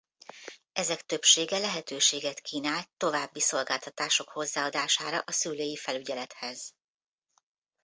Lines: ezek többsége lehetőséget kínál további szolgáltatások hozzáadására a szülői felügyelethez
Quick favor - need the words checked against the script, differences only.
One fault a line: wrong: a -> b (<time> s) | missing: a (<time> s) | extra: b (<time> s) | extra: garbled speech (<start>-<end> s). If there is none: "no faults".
no faults